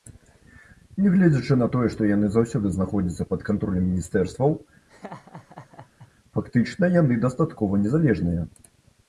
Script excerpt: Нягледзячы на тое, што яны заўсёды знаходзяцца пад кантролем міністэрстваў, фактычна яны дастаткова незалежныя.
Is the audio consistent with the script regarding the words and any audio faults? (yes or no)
no